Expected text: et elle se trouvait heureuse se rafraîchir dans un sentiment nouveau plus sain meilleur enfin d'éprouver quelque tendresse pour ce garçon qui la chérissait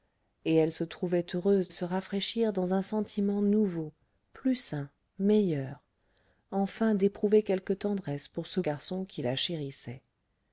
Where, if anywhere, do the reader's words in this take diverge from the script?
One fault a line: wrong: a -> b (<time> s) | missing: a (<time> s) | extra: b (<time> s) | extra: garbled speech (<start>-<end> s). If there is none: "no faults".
no faults